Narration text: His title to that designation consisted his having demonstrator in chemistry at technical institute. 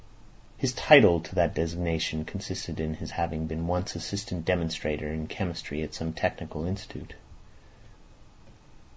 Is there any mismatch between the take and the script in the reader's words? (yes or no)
yes